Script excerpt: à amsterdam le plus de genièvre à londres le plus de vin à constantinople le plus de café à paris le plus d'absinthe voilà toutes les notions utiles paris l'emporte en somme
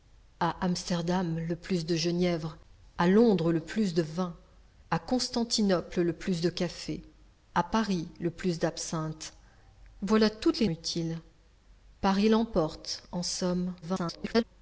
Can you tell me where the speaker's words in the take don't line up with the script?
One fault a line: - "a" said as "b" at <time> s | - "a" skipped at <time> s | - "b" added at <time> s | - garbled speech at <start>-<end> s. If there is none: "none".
- "notions" skipped at 10.7 s
- garbled speech at 13.8-14.4 s